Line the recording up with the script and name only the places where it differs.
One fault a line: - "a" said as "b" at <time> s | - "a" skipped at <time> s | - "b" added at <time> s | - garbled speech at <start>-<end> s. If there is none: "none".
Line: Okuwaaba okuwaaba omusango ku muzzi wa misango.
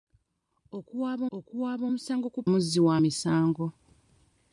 none